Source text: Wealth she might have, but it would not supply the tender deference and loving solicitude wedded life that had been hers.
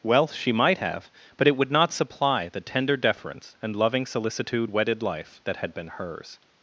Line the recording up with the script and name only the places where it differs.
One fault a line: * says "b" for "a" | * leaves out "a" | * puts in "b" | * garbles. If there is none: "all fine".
all fine